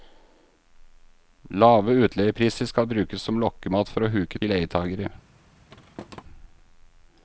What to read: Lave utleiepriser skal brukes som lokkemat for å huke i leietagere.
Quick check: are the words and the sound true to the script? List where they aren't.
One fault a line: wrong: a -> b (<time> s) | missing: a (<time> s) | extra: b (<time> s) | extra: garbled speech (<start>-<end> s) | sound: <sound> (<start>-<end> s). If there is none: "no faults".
sound: thud (5.7-6.2 s)